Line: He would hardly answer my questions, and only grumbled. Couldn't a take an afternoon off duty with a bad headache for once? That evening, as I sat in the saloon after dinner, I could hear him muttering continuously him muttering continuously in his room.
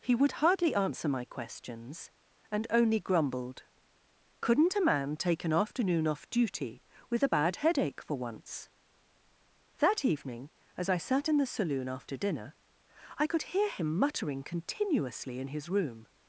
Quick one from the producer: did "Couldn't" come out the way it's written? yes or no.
yes